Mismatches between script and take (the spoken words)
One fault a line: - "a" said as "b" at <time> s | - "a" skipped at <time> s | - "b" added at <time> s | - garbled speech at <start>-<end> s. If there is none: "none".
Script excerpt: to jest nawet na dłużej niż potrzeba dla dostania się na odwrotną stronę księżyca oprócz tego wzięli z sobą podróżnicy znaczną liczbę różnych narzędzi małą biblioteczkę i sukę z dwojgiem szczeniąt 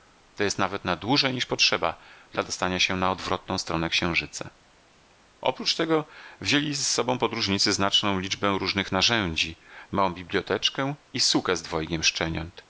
none